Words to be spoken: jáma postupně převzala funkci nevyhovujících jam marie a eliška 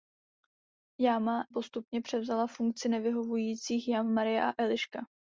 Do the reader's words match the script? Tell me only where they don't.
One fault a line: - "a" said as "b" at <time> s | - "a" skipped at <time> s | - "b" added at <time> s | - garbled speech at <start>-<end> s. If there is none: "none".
none